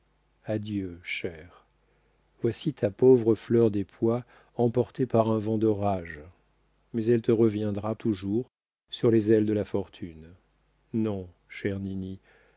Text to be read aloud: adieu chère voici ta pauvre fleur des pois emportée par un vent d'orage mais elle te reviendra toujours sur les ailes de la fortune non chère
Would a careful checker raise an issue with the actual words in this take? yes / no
no